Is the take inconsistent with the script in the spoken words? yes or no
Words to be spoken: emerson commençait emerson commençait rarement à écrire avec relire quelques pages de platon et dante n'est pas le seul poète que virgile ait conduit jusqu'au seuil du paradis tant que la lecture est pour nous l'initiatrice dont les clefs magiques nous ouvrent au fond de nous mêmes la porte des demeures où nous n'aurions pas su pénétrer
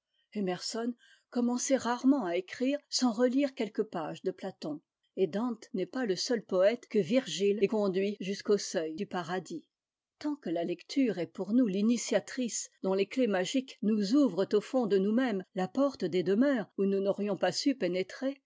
yes